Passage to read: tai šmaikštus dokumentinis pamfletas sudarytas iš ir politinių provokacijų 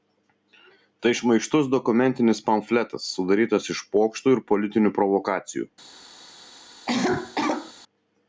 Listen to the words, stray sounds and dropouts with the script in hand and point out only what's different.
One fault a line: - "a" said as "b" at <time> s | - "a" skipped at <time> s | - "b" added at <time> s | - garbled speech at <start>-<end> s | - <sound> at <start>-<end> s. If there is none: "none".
- "pokštų" added at 4.0 s
- cough at 6.9-7.7 s